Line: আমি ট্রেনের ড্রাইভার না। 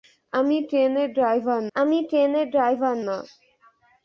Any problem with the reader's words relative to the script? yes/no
yes